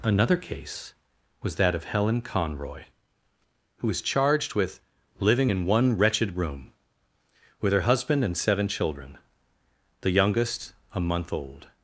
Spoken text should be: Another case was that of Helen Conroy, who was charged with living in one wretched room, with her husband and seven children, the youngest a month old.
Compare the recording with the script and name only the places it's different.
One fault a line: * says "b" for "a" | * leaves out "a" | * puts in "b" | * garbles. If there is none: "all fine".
all fine